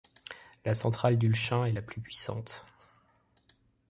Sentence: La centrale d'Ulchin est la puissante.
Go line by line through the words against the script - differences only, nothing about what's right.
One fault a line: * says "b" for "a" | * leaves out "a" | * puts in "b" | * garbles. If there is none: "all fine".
* puts in "plus"